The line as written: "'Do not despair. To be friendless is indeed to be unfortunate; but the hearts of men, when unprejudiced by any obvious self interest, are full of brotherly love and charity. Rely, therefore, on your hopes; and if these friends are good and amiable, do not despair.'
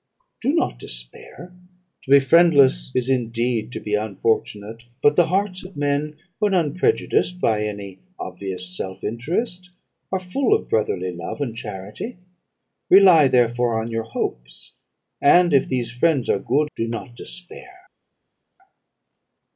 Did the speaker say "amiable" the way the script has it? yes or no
no